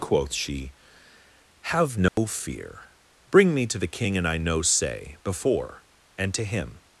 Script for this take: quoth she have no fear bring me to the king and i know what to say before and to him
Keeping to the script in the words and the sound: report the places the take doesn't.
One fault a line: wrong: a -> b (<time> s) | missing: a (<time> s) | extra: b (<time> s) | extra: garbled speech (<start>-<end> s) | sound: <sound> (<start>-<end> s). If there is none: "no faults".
sound: dropout (2.1-2.2 s)
missing: what to (4.6 s)